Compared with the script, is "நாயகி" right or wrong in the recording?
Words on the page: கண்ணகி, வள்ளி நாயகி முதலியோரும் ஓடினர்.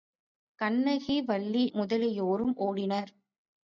wrong